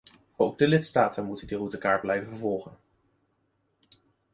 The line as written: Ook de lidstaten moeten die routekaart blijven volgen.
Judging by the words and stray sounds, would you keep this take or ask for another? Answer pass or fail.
pass